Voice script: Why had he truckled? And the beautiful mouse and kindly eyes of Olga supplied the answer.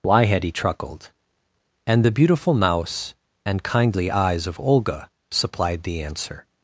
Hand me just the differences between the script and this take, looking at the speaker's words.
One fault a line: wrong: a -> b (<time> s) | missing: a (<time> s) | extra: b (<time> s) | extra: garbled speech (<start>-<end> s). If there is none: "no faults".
no faults